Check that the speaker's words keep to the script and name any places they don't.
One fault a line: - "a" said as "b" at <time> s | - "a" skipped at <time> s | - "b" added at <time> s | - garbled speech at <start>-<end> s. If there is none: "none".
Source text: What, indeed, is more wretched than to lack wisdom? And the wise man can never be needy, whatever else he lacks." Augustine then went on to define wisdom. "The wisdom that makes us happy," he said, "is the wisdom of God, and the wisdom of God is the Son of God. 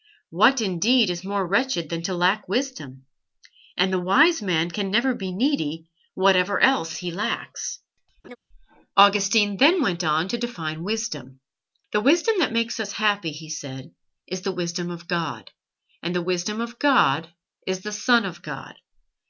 none